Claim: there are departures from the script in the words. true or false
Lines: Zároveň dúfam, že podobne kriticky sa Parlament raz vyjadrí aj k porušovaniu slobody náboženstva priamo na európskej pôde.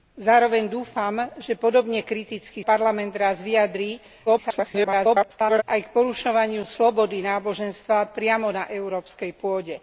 true